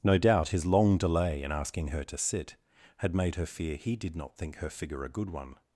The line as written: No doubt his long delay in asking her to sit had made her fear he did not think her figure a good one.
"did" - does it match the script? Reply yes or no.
yes